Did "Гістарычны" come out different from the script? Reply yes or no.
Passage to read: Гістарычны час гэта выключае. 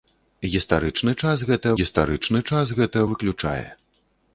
no